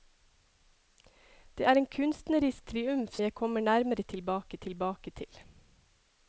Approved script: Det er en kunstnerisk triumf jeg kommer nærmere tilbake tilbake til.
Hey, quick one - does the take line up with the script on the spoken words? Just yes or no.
yes